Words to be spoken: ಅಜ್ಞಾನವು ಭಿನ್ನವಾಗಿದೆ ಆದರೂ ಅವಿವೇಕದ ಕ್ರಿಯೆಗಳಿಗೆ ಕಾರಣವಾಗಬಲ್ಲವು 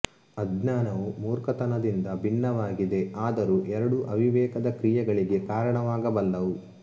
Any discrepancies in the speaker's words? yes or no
yes